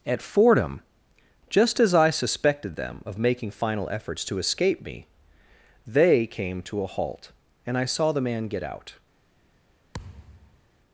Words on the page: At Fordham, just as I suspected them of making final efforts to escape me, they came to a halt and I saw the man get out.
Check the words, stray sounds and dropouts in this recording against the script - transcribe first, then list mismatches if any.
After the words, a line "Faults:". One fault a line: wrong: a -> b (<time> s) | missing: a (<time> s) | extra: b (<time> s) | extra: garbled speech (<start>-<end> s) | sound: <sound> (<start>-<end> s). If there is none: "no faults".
At Fordham, just as I suspected them of making final efforts to escape me, they came to a halt and I saw the man get out.
Faults:
sound: thud (9.9-10.6 s)